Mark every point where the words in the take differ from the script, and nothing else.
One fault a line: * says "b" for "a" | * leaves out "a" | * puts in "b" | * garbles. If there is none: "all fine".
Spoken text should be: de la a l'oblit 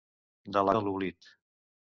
all fine